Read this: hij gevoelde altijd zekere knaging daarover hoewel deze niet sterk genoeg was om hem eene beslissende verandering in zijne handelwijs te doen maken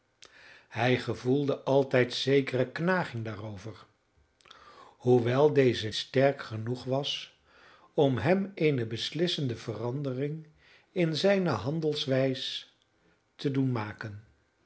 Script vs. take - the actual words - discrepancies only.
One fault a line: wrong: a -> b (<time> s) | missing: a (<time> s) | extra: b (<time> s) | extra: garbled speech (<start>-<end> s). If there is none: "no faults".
missing: niet (5.9 s)